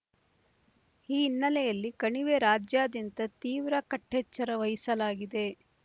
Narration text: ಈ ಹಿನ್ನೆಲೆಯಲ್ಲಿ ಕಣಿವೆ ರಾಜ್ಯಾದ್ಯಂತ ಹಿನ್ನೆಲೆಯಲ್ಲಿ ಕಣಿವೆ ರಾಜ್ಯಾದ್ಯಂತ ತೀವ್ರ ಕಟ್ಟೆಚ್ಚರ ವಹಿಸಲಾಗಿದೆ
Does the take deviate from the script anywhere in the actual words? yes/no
yes